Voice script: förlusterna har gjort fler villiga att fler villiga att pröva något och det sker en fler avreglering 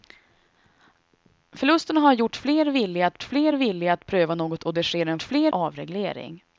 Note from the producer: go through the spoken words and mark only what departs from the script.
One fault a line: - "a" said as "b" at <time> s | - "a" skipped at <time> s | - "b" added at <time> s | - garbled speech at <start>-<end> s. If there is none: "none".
none